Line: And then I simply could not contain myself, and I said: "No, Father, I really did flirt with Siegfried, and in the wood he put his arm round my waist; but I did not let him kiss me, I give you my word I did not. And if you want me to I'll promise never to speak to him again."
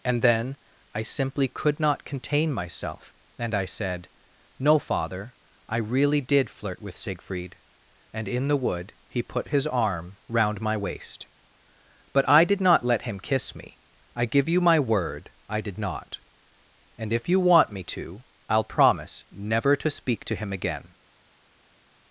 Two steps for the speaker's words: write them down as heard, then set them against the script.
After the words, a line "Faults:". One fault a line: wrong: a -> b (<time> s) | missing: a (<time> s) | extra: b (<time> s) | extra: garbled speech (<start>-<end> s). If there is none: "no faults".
And then I simply could not contain myself, and I said: "No, Father, I really did flirt with Siegfried, and in the wood he put his arm round my waist; but I did not let him kiss me, I give you my word I did not. And if you want me to I'll promise never to speak to him again."
Faults:
no faults